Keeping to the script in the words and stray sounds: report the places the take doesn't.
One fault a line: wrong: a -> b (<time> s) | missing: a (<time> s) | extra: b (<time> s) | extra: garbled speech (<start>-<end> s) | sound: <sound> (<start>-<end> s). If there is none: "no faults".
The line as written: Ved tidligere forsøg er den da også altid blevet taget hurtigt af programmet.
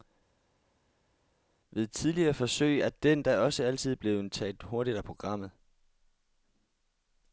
no faults